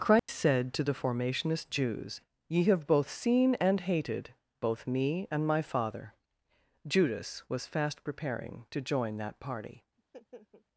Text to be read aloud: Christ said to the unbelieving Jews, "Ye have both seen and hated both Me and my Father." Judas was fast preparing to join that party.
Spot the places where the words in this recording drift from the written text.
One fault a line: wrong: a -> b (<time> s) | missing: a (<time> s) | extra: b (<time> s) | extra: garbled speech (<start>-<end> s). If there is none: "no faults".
wrong: unbelieving -> formationist (0.9 s)